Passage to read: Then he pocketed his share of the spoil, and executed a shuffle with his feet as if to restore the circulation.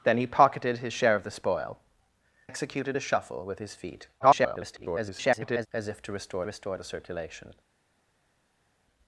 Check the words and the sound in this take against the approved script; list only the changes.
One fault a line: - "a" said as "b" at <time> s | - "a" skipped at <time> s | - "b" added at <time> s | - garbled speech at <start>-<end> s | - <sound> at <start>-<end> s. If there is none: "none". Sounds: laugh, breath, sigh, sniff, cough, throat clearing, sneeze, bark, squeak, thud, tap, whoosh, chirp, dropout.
- "and" skipped at 1.8 s
- garbled speech at 4.2-5.7 s
- "restore" added at 6.4 s